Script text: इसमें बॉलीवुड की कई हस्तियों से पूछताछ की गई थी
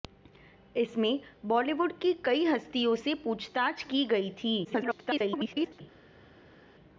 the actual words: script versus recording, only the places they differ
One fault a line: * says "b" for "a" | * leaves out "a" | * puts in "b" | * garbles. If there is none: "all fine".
* garbles